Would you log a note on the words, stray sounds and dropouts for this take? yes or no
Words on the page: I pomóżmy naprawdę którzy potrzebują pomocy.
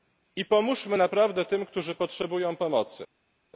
yes